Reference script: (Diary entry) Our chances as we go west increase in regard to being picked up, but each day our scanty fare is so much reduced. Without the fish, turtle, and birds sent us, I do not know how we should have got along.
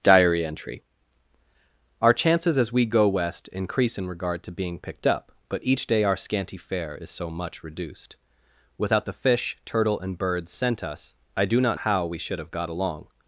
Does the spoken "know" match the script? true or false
false